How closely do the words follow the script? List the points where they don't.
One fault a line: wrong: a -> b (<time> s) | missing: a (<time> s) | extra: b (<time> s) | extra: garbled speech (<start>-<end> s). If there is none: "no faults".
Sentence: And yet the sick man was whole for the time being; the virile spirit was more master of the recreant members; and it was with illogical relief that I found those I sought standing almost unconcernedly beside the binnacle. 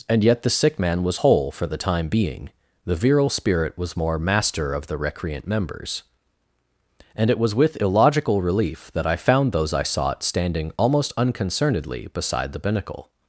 no faults